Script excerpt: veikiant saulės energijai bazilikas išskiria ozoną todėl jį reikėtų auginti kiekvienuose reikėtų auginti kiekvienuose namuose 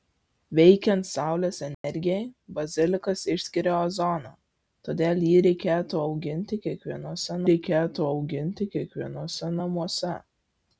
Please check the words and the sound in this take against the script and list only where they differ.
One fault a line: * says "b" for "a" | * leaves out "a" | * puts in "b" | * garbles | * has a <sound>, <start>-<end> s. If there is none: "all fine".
* has a dropout, 1.7-1.8 s